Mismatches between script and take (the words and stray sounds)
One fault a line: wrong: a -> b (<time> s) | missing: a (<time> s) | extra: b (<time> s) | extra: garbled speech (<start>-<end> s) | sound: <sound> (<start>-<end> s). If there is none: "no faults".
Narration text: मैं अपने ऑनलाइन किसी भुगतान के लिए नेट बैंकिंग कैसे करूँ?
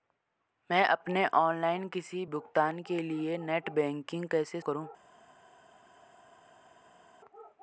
no faults